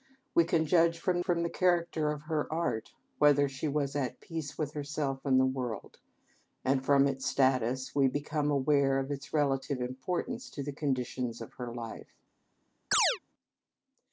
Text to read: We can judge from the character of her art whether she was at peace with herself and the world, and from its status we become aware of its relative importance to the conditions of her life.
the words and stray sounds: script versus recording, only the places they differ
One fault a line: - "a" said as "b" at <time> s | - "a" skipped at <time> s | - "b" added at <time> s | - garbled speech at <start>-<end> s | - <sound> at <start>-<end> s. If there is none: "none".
- "from" added at 1.2 s
- chirp at 12.9-13.2 s